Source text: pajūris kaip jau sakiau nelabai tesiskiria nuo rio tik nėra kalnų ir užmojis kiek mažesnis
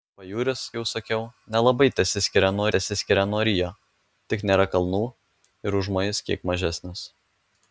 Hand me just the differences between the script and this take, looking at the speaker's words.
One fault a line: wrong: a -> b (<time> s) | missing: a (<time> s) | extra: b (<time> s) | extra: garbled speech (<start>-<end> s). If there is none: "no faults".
missing: kaip (0.6 s)
extra: tesiskiria nuo (2.7 s)